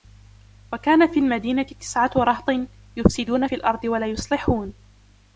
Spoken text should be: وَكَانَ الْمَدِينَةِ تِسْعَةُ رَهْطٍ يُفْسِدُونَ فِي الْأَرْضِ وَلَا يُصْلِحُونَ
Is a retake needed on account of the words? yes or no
yes